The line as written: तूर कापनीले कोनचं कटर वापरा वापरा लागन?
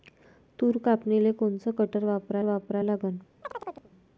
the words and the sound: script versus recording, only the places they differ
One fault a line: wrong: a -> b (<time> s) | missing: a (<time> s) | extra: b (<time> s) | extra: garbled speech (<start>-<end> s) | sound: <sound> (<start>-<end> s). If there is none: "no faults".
sound: chirp (3.4-3.9 s)